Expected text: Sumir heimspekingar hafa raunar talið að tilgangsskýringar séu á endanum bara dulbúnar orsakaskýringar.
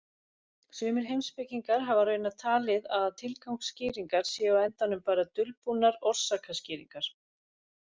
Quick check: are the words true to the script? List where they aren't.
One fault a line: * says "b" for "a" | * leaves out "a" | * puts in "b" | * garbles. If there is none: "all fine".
all fine